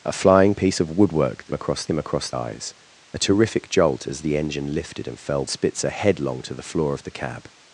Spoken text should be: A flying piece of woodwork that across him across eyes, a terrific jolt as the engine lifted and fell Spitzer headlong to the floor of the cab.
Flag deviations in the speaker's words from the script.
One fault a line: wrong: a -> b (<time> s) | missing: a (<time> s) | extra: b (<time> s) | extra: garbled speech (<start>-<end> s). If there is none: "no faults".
no faults